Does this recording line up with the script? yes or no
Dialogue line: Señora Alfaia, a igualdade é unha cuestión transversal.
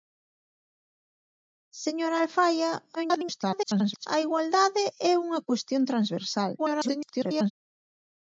no